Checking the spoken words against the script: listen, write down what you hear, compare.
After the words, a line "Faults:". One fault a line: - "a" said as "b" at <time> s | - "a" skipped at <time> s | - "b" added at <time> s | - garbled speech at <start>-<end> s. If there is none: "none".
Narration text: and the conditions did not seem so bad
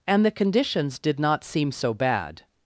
and the conditions did not seem so bad
Faults:
none